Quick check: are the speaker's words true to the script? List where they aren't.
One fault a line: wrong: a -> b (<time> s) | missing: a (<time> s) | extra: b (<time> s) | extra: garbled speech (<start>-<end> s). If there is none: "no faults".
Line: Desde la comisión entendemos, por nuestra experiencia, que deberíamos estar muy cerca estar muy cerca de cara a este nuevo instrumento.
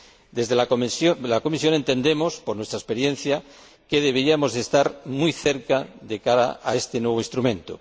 missing: estar muy cerca (5.9 s)